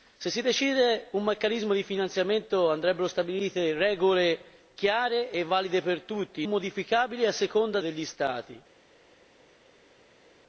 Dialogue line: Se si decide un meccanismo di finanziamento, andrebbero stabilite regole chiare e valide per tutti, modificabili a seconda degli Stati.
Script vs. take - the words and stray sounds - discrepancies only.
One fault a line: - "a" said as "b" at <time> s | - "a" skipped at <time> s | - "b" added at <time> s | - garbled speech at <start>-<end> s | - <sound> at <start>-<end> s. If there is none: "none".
none